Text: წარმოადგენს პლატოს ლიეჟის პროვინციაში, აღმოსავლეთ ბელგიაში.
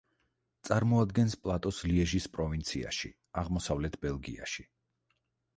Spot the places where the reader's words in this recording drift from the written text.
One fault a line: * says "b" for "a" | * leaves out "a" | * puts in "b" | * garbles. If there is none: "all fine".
all fine